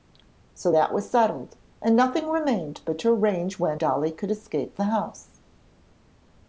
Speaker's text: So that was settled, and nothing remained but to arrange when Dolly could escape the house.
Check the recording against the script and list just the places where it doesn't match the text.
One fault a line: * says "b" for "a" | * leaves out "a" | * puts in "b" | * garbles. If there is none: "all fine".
all fine